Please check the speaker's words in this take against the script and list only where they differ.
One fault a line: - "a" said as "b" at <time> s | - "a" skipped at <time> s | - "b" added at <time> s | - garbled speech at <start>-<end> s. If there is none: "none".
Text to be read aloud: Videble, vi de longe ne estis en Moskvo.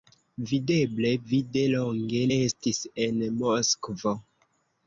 - "ne" skipped at 2.2 s